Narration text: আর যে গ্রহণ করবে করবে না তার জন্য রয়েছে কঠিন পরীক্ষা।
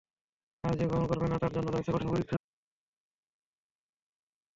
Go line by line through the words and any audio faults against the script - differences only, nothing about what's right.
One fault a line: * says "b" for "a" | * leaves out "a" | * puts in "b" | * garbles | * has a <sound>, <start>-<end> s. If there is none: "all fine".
* leaves out "করবে"